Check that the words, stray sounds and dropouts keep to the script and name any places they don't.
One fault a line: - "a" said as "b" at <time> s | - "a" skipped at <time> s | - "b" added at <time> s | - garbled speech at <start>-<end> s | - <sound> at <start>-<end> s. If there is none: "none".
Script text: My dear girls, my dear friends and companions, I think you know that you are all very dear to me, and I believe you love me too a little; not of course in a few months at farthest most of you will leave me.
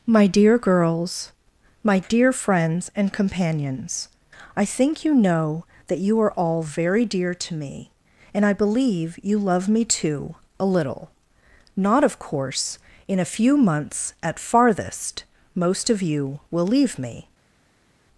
none